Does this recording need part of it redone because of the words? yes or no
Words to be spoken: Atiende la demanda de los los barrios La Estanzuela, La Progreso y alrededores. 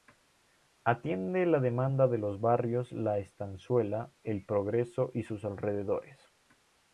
yes